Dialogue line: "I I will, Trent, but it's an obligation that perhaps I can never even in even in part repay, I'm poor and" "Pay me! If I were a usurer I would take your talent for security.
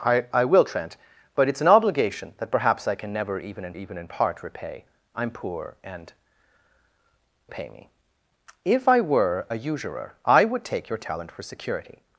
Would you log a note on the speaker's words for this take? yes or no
no